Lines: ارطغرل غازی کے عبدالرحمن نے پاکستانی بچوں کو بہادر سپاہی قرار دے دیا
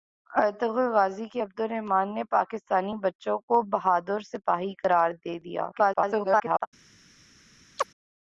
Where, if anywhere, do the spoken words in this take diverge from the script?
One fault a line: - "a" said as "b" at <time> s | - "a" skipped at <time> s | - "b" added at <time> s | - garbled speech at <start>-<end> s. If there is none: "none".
- garbled speech at 5.7-6.7 s